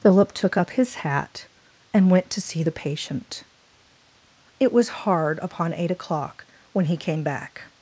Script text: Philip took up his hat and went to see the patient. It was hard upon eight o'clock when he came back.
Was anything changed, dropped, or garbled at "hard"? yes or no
no